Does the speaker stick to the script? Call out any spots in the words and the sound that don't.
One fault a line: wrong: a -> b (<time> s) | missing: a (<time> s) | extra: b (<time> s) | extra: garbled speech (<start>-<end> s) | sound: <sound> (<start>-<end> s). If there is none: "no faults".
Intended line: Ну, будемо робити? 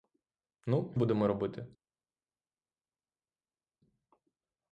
no faults